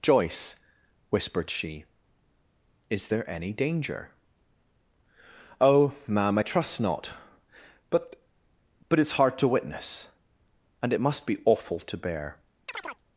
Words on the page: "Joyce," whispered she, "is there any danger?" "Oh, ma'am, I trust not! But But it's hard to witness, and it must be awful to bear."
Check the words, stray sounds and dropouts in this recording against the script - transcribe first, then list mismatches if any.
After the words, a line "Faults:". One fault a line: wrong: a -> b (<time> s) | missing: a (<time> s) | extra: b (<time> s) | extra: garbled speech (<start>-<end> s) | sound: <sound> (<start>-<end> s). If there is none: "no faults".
"Joyce," whispered she, "is there any danger?" "Oh, ma'am, I trust not! But But it's hard to witness, and it must be awful to bear."
Faults:
sound: chirp (12.7-13.0 s)